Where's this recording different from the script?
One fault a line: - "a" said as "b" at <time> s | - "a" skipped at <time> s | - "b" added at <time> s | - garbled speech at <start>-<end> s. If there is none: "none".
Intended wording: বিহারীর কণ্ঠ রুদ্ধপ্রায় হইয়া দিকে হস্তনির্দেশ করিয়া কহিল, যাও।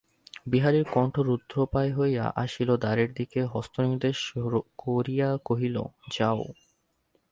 - "আসিল দ্বারের" added at 2.4 s